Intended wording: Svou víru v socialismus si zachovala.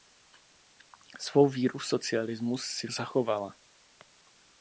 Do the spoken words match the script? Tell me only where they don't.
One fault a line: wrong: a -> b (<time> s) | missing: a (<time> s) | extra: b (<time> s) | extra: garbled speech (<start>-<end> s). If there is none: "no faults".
no faults